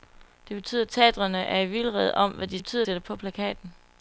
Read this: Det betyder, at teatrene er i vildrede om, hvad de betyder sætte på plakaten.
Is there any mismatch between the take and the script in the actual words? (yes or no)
no